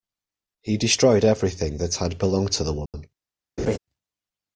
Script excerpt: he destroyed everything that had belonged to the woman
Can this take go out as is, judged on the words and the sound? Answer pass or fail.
fail